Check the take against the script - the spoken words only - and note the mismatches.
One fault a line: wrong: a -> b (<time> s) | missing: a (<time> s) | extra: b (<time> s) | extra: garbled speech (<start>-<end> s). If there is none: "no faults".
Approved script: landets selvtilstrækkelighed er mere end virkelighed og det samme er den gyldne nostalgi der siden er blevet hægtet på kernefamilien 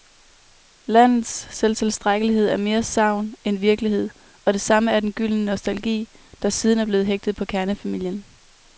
extra: sagn (2.8 s)